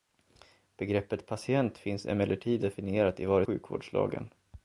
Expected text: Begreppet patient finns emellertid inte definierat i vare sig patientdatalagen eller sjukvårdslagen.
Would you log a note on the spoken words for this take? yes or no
yes